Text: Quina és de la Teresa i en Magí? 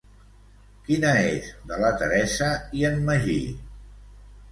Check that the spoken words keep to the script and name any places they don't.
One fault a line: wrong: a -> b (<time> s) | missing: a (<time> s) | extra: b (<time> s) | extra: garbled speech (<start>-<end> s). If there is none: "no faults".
no faults